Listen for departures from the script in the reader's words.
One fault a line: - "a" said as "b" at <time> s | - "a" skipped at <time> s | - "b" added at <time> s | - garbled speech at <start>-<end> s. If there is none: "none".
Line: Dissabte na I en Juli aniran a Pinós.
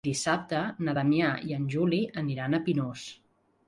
- "Damià" added at 1.0 s